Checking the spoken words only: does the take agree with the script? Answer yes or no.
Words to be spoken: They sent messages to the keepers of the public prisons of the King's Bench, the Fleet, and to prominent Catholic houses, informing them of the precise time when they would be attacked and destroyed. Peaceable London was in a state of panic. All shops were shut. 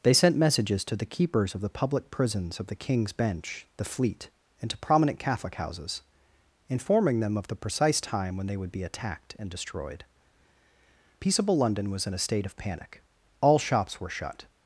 yes